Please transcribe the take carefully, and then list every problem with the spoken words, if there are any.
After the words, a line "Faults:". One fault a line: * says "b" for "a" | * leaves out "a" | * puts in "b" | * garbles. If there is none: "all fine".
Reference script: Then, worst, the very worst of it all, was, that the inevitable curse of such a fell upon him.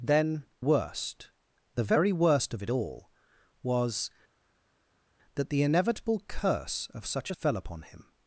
Then, worst, the very worst of it all, was, that the inevitable curse of such a fell upon him.
Faults:
all fine